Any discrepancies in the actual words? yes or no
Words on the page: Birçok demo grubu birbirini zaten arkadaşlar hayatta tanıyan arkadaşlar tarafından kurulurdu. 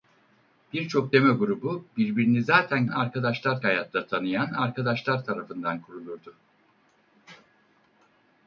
no